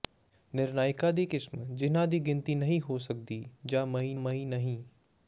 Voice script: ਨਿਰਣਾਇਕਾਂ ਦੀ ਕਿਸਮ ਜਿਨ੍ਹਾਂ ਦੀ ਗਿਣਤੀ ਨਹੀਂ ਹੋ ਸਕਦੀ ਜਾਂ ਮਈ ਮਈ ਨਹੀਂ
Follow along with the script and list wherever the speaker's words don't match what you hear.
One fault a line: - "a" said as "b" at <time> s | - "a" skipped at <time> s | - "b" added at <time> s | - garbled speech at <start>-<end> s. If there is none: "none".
none